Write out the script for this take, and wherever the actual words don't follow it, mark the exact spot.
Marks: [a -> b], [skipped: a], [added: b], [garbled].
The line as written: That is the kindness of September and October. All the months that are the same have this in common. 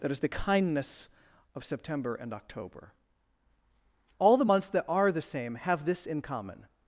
That is the kindness of September and October. All the months that are the same have this in common.